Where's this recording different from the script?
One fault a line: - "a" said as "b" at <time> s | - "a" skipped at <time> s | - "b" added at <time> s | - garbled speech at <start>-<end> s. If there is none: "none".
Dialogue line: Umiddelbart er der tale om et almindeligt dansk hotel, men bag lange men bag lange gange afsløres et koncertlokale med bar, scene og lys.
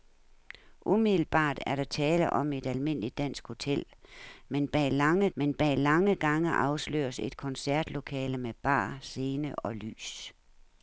none